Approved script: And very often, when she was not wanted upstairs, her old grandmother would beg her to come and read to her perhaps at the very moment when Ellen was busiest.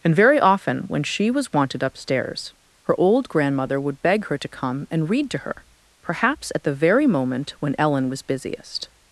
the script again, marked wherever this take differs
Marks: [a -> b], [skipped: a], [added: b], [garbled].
And very often, when she was [skipped: not] wanted upstairs, her old grandmother would beg her to come and read to her perhaps at the very moment when Ellen was busiest.